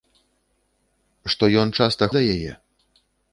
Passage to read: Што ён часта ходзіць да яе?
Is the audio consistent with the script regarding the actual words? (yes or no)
no